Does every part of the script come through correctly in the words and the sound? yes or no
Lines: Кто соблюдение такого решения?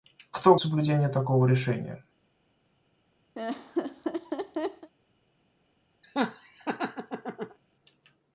no